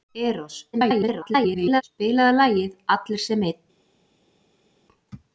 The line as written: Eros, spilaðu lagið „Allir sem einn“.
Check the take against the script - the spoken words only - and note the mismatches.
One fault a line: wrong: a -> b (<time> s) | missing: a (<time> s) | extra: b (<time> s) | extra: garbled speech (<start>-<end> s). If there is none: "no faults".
extra: garbled speech (0.7-1.8 s)